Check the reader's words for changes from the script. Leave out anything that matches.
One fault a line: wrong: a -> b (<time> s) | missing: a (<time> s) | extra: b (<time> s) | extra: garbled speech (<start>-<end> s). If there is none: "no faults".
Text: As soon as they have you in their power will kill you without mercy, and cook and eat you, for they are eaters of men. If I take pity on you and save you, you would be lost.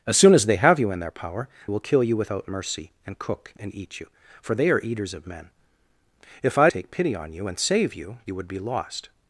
no faults